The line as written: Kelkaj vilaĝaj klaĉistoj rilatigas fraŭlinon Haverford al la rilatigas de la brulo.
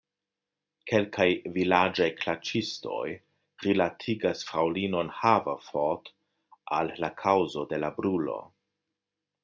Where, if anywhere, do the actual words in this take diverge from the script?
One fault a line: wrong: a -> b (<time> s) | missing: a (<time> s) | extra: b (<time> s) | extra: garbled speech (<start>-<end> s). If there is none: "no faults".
wrong: rilatigas -> kaŭzo (7.2 s)